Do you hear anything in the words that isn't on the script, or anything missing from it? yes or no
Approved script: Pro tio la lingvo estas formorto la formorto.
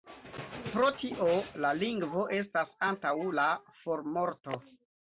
yes